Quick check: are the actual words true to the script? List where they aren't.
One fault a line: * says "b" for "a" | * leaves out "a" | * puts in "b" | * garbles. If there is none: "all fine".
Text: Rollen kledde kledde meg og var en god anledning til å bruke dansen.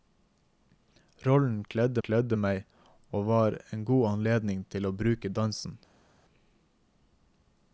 all fine